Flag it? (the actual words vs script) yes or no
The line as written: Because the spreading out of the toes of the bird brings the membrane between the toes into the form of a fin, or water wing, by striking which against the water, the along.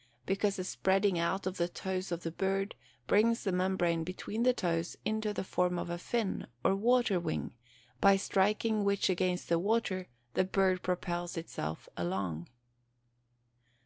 yes